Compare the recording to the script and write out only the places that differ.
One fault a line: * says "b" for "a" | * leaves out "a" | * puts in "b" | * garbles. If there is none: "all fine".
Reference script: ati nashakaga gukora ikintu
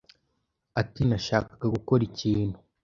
all fine